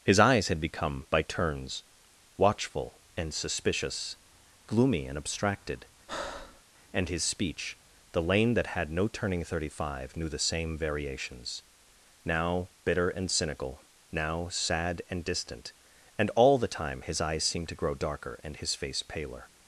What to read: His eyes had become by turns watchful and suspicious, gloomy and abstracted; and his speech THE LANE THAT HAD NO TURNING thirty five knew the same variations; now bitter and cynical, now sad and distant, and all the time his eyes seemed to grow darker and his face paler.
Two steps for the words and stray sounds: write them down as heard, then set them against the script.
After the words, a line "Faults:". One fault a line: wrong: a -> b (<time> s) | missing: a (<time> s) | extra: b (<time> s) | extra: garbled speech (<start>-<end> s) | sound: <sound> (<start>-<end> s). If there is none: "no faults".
His eyes had become by turns watchful and suspicious, gloomy and abstracted; and his speech THE LANE THAT HAD NO TURNING thirty five knew the same variations; now bitter and cynical, now sad and distant, and all the time his eyes seemed to grow darker and his face paler.
Faults:
sound: breath (6.1-6.6 s)